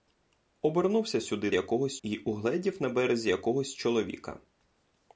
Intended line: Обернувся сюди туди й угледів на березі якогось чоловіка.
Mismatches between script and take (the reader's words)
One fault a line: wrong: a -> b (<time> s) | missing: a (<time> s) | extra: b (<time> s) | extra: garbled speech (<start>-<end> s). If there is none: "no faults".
wrong: туди -> якогось (1.5 s)